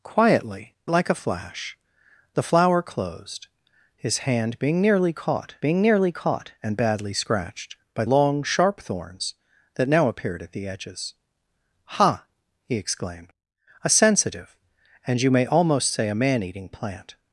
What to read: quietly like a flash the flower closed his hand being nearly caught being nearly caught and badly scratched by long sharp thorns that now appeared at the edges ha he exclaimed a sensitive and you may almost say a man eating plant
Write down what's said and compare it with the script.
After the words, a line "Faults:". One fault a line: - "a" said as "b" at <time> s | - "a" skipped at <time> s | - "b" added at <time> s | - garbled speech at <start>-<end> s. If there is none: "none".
quietly like a flash the flower closed his hand being nearly caught being nearly caught and badly scratched by long sharp thorns that now appeared at the edges ha he exclaimed a sensitive and you may almost say a man eating plant
Faults:
none